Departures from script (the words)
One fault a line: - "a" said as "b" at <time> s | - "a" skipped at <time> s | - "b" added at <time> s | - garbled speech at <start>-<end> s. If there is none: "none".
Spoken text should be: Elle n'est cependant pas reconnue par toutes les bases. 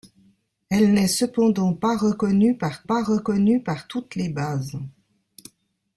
- "pas reconnue par" added at 2.8 s